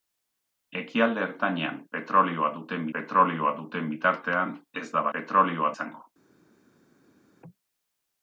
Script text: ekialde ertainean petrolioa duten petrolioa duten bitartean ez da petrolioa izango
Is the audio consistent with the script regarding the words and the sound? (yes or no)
yes